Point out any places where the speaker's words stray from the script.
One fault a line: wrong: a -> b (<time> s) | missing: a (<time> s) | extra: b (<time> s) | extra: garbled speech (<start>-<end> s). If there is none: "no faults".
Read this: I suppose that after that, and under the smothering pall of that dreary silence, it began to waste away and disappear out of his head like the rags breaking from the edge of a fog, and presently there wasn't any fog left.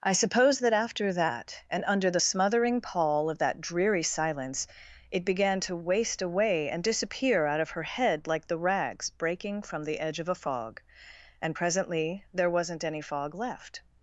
wrong: his -> her (7.7 s)